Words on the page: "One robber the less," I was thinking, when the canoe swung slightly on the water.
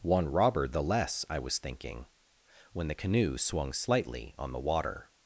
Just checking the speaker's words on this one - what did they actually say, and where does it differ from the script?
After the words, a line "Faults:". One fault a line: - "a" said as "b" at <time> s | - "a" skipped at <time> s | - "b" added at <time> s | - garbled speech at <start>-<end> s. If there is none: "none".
"One robber the less," I was thinking, when the canoe swung slightly on the water.
Faults:
none